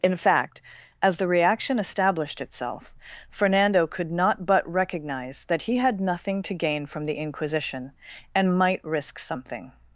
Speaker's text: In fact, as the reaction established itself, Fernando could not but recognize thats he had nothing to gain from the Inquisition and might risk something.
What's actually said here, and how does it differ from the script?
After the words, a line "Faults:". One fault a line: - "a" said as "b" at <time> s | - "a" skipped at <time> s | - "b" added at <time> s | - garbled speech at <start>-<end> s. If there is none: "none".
In fact, as the reaction established itself, Fernando could not but recognize that he had nothing to gain from the Inquisition and might risk something.
Faults:
- "thats" said as "that" at 5.5 s